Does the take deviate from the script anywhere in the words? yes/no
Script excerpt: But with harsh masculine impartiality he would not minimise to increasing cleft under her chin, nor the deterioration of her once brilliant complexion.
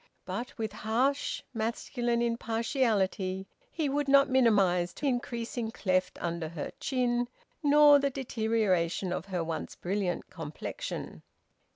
no